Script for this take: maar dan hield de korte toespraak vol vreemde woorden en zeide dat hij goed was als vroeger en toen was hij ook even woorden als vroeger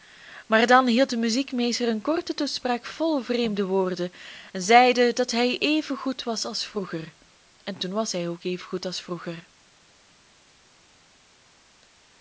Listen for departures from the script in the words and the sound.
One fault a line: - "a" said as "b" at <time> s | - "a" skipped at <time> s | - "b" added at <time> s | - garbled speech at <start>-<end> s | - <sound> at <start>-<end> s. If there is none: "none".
- "muziekmeester een" added at 1.2 s
- "even" added at 5.6 s
- "woorden" said as "goed" at 8.7 s